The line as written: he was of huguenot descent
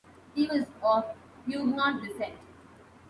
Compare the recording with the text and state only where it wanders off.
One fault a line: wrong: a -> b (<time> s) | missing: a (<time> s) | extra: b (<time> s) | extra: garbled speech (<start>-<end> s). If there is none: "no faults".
no faults